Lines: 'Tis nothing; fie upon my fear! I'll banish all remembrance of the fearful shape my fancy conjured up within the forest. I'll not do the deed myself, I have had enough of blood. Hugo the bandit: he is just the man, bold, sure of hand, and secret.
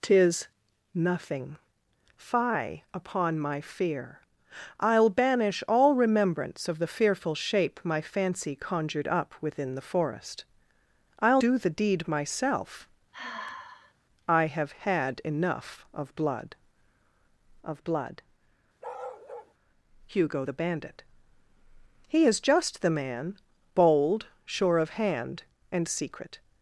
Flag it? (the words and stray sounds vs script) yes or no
yes